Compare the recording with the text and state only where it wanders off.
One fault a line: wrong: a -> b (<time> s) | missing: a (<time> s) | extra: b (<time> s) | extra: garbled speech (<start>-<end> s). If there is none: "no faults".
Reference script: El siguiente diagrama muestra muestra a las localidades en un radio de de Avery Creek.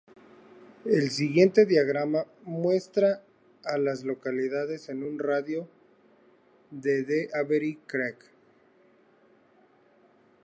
missing: muestra (3.2 s)